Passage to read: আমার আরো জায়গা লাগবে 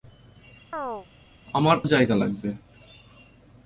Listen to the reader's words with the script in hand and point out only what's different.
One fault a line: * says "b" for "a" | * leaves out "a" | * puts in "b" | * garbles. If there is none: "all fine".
* leaves out "আরো"